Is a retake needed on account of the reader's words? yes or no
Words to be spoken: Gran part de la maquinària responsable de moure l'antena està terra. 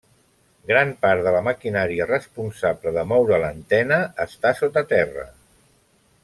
yes